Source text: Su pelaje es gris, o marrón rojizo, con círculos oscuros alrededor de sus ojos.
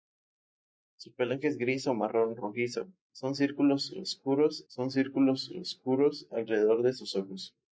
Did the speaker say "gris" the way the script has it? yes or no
yes